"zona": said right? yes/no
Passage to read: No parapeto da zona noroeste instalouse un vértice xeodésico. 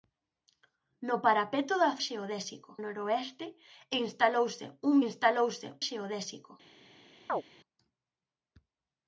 no